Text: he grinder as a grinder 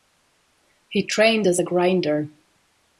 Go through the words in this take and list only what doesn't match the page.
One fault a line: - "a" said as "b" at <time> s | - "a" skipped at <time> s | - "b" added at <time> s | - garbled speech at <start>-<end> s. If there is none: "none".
- "grinder" said as "trained" at 1.0 s